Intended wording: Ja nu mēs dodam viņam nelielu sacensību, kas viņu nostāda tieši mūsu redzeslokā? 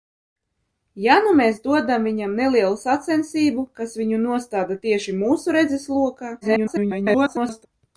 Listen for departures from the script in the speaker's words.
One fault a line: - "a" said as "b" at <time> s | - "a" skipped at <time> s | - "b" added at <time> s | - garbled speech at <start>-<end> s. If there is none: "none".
- garbled speech at 6.4-7.7 s